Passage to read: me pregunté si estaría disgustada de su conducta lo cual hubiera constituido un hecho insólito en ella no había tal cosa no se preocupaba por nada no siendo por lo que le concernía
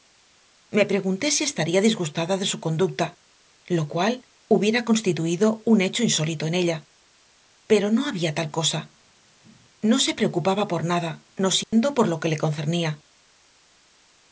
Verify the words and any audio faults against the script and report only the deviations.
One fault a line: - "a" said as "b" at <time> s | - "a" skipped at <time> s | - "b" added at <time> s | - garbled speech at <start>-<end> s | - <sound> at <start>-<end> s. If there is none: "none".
- "pero" added at 7.7 s
- dropout at 11.6-11.7 s